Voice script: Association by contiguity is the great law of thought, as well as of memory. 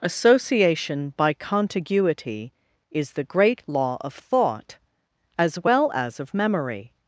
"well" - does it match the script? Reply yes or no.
yes